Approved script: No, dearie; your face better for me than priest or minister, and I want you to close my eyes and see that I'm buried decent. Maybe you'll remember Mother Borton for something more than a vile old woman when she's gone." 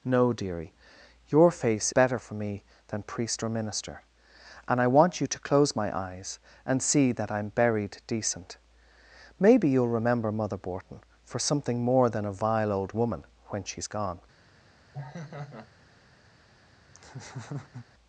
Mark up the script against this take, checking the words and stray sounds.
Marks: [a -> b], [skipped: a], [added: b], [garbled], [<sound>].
No, dearie; your face better for me than priest or minister, and I want you to close my eyes and see that I'm buried decent. Maybe you'll remember Mother Borton for something more than a vile old woman when she's gone." [laugh] [laugh]